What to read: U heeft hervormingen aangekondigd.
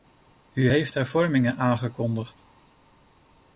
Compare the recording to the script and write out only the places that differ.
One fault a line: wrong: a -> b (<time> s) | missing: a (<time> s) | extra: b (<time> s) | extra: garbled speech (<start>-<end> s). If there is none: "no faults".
no faults